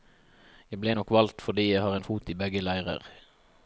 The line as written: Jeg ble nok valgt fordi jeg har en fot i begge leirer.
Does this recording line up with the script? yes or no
yes